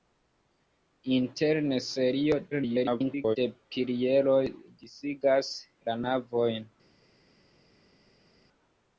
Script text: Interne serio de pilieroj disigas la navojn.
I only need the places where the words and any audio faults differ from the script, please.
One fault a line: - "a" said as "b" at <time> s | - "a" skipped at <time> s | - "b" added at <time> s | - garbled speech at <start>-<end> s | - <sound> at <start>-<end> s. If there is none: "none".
- garbled speech at 2.5-3.4 s